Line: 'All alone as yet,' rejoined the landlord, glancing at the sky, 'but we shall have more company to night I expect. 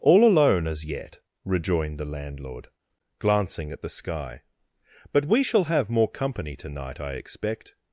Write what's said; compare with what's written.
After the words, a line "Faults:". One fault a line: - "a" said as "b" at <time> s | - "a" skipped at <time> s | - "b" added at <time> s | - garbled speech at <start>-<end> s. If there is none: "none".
'All alone as yet,' rejoined the landlord, glancing at the sky, 'but we shall have more company to night I expect.
Faults:
none